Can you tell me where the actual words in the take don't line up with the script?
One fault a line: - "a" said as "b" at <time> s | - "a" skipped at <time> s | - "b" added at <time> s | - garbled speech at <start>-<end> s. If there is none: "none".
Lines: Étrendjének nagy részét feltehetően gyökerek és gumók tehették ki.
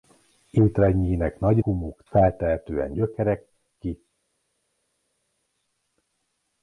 - "részét" said as "gumók" at 1.6 s
- "és gumók tehették" skipped at 3.5 s